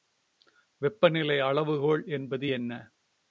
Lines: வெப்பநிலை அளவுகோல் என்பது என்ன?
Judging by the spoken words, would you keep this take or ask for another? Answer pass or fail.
pass